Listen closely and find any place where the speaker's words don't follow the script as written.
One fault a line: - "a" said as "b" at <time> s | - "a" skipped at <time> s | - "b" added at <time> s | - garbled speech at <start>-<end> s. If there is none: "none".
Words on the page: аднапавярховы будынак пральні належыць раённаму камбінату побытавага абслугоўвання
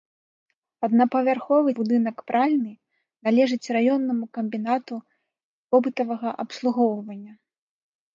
none